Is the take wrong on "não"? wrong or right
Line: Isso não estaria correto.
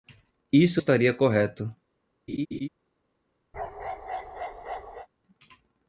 wrong